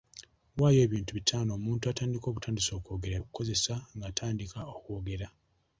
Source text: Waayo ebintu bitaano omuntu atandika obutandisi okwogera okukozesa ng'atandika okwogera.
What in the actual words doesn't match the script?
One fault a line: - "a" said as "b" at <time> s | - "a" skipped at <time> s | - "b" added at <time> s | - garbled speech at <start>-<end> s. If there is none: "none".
none